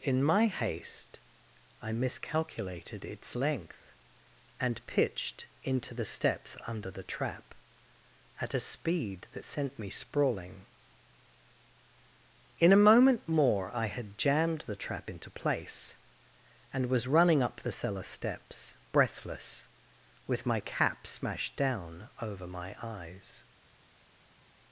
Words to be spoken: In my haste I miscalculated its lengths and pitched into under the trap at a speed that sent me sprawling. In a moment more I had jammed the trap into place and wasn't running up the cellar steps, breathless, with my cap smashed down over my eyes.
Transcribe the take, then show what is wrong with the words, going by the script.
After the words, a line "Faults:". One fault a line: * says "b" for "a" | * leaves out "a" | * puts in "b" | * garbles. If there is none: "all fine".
In my haste I miscalculated its length and pitched into the steps under the trap at a speed that sent me sprawling. In a moment more I had jammed the trap into place and was running up the cellar steps, breathless, with my cap smashed down over my eyes.
Faults:
* says "length" for "lengths"
* puts in "the steps"
* says "was" for "wasn't"